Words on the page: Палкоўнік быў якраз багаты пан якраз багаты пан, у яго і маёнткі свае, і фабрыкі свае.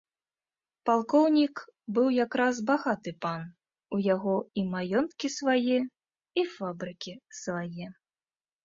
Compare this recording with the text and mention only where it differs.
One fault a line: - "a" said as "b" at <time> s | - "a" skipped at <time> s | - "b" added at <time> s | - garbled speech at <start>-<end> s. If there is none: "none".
- "якраз багаты пан" skipped at 3.4 s